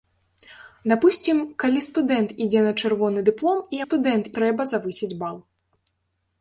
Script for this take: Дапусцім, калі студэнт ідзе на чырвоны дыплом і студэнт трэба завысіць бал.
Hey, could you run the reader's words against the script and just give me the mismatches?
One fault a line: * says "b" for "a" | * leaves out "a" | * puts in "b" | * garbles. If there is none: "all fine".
all fine